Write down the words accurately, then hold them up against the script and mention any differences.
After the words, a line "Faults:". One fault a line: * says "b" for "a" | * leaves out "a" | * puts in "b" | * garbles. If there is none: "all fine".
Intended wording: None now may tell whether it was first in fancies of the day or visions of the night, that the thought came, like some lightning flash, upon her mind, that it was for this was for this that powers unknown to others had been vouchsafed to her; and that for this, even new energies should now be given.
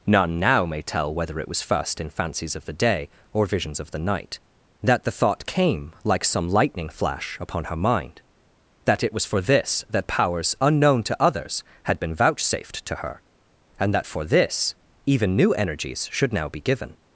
None now may tell whether it was first in fancies of the day or visions of the night, that the thought came, like some lightning flash, upon her mind, that it was for this that powers unknown to others had been vouchsafed to her; and that for this, even new energies should now be given.
Faults:
* leaves out "was for this"